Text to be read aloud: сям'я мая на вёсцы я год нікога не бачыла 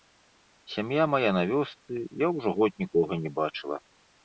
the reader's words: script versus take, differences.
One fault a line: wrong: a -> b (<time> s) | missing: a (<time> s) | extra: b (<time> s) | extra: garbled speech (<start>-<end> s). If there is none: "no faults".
extra: ўжо (2.4 s)